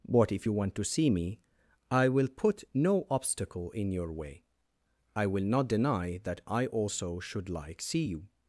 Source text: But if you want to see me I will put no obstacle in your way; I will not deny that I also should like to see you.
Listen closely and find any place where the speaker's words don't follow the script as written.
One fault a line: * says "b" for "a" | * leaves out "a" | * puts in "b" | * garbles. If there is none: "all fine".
* leaves out "to"